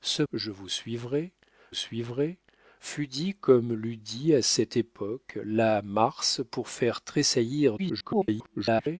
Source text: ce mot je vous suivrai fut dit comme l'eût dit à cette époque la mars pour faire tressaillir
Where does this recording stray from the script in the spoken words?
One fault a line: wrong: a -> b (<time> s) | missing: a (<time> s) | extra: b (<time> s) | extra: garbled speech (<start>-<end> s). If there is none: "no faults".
missing: mot (0.2 s)
extra: suivrai (1.7 s)
extra: garbled speech (7.8-9.0 s)